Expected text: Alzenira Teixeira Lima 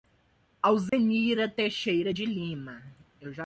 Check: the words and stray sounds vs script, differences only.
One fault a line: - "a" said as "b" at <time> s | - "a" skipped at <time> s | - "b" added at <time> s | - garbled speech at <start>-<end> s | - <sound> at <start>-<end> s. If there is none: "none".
- dropout at 0.9-0.9 s
- "de" added at 2.1 s